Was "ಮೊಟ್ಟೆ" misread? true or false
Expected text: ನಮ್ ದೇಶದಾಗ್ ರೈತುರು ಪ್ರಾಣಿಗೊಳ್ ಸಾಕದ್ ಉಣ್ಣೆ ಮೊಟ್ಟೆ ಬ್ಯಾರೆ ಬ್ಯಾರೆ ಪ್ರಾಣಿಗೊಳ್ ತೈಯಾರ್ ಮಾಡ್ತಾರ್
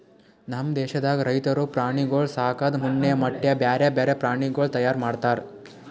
false